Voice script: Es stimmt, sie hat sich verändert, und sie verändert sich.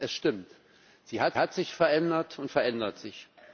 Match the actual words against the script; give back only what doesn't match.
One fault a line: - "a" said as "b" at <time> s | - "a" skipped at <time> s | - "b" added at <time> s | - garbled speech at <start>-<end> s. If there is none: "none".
- "hat" added at 1.4 s
- "sie" skipped at 2.5 s